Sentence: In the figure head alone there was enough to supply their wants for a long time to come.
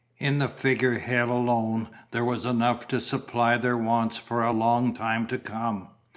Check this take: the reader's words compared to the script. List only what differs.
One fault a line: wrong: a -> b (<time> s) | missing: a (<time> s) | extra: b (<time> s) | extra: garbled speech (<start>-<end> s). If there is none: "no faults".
no faults